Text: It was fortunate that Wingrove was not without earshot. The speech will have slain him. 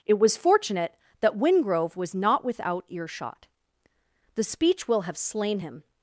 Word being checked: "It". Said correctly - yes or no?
yes